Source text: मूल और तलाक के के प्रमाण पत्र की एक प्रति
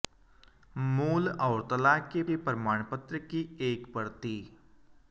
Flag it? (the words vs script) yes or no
no